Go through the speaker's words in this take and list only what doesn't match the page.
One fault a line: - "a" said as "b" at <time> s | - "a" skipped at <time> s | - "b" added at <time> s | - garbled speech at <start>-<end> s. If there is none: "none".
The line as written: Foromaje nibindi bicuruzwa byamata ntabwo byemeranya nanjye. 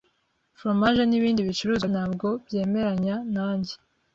- "byamata" skipped at 1.9 s